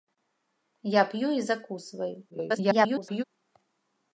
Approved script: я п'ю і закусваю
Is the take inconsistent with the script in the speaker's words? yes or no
yes